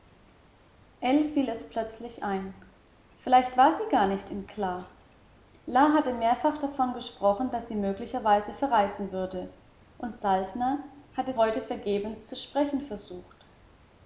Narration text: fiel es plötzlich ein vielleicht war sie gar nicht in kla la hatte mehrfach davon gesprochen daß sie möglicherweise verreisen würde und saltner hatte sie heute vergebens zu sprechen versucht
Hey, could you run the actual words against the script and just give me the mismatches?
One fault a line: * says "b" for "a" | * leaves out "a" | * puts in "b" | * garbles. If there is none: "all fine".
* leaves out "sie"